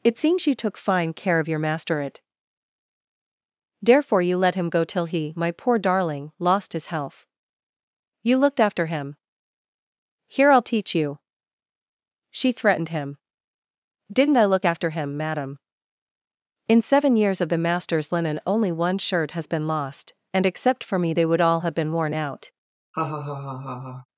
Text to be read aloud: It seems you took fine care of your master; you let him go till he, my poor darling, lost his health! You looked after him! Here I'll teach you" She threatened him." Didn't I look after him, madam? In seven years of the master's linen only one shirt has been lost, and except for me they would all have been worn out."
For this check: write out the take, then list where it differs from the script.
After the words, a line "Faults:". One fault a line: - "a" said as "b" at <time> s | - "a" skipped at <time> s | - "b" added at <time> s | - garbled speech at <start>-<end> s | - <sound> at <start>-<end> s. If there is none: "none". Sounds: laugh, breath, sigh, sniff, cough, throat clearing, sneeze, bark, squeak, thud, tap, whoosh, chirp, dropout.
It seems you took fine care of your master; it therefore you let him go till he, my poor darling, lost his health! You looked after him! Here I'll teach you" She threatened him." Didn't I look after him, madam? In seven years of the master's linen only one shirt has been lost, and except for me they would all have been worn out."
Faults:
- "it therefore" added at 2.0 s
- laugh at 22.9-24.1 s